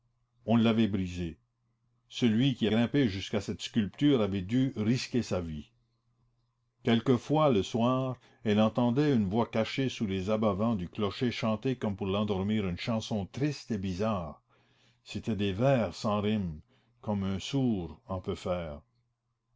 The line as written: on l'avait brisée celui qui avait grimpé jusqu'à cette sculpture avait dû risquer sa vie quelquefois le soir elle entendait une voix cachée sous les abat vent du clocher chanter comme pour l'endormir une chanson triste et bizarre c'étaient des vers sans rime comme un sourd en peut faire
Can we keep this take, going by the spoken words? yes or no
no